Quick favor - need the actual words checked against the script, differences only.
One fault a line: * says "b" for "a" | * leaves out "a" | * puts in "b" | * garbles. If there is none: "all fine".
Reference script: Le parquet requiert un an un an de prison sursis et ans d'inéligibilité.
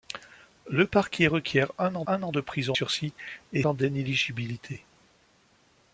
all fine